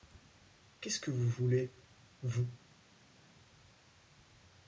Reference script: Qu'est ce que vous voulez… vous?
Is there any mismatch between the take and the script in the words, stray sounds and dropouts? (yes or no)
no